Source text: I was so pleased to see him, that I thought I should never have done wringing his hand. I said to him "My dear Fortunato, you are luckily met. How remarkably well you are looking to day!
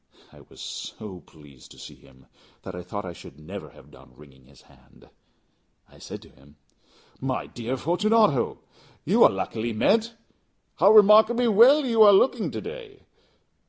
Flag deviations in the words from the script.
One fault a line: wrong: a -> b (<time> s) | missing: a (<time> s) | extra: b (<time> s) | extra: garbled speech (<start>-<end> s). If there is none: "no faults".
no faults